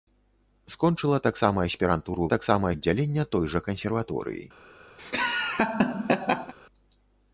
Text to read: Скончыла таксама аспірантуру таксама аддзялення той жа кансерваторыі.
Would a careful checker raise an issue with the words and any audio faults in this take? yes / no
yes